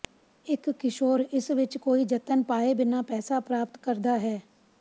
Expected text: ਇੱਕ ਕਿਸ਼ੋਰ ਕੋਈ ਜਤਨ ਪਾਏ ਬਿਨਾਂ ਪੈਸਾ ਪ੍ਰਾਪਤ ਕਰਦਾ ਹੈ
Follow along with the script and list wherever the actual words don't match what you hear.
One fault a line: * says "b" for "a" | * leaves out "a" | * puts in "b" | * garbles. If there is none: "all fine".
* puts in "ਇਸ ਵਿੱਚ"